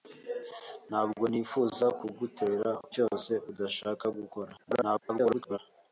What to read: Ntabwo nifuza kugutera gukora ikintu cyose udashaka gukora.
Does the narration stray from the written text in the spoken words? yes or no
yes